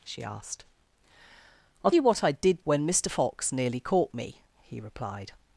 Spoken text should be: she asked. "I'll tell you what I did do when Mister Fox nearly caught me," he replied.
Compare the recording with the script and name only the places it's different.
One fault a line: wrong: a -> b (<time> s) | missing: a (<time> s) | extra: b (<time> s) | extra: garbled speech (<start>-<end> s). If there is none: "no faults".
missing: tell (1.9 s)
missing: do (2.7 s)